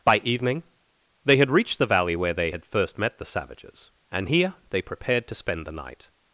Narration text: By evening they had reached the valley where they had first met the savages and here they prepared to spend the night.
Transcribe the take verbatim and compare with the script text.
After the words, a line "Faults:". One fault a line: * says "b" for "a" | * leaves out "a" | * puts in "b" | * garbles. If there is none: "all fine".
By evening they had reached the valley where they had first met the savages and here they prepared to spend the night.
Faults:
all fine